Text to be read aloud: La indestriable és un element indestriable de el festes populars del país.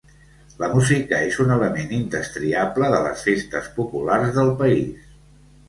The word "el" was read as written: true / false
false